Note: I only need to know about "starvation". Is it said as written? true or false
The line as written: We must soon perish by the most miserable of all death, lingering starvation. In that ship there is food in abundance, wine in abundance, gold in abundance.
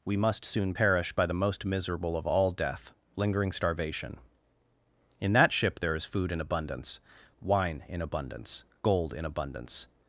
true